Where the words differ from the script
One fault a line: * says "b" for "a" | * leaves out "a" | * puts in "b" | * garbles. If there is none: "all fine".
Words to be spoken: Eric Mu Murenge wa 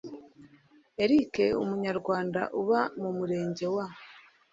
* puts in "Umunyarwanda uba"